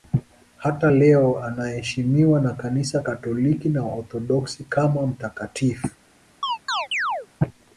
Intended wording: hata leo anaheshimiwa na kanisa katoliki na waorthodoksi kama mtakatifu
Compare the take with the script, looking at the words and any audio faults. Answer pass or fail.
fail